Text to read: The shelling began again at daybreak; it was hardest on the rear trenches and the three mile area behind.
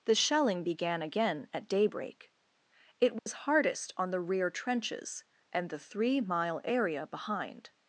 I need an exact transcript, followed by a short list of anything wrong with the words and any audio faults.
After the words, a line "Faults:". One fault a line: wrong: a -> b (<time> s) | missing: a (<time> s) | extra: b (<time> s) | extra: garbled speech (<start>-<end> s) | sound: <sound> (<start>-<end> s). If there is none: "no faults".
The shelling began again at daybreak; it was hardest on the rear trenches and the three mile area behind.
Faults:
sound: dropout (3.2-3.3 s)